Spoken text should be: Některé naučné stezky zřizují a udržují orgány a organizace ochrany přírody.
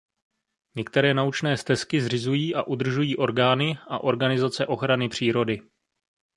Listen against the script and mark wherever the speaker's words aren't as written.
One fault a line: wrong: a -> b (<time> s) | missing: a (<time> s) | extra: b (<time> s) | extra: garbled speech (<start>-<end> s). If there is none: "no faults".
no faults